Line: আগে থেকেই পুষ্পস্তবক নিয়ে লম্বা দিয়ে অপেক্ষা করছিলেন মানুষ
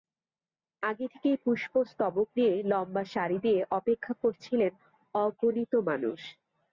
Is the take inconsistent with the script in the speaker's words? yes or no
yes